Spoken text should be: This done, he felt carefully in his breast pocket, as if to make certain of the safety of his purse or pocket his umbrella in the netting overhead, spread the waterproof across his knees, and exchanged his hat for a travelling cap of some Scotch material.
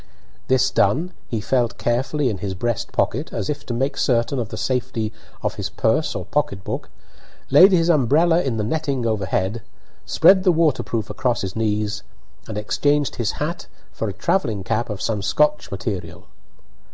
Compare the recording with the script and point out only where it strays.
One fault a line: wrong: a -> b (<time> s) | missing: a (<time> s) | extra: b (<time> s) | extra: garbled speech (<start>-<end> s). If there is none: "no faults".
extra: book laid (6.6 s)